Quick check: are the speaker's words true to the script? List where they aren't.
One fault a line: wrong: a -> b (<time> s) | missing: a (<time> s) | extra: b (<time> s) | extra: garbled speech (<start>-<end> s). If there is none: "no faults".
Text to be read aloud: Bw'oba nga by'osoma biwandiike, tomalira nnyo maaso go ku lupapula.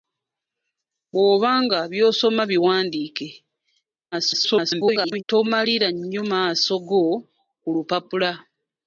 extra: garbled speech (4.1-5.2 s)